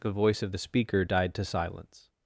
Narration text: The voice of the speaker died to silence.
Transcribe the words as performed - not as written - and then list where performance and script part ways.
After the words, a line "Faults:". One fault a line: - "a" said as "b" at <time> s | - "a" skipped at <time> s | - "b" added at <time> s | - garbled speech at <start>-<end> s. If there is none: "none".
The voice of the speaker died to silence.
Faults:
none